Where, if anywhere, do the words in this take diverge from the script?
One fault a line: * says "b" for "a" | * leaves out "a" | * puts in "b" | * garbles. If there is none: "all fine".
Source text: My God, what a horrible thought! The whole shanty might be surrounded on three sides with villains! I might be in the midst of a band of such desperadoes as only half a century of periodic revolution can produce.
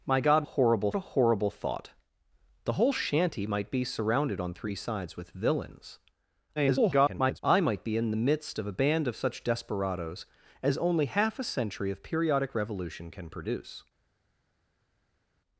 * says "horrible" for "what"
* garbles